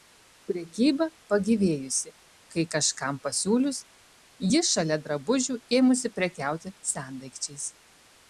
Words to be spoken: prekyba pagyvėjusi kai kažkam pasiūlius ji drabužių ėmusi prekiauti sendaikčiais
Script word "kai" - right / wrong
right